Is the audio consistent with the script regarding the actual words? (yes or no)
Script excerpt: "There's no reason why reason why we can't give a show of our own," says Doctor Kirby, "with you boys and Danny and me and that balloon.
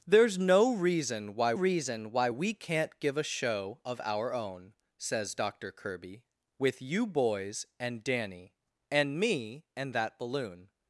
yes